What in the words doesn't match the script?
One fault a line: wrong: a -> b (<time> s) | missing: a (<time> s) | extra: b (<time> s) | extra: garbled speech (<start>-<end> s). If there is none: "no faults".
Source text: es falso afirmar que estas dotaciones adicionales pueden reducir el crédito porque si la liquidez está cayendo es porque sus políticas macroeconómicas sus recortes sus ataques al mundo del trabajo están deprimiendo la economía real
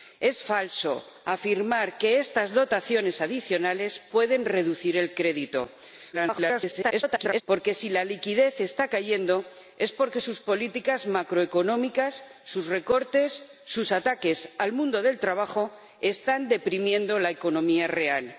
extra: garbled speech (6.1-7.4 s)